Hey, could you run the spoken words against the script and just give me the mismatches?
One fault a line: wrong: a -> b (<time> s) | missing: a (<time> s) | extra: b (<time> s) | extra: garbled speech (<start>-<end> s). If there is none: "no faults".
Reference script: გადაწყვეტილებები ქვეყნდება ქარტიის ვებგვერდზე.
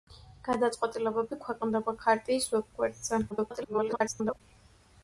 extra: garbled speech (3.3-4.4 s)